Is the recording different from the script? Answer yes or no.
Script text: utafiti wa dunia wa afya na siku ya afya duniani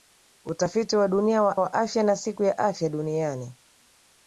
yes